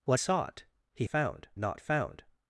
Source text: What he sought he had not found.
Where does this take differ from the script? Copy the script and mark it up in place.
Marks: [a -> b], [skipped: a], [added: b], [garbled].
What [skipped: he] sought he [had -> found] not found.